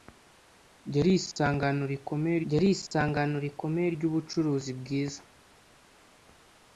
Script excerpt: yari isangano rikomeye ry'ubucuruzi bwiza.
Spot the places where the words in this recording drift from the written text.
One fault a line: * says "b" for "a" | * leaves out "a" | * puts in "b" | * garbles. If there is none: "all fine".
* puts in "yari isangano rikomeye"